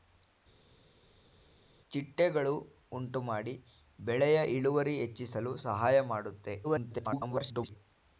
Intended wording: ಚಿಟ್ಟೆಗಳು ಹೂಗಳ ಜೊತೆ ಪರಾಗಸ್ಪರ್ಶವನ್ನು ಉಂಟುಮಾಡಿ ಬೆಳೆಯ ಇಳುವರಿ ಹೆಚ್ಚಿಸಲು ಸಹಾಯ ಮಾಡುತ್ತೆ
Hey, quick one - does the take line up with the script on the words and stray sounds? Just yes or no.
no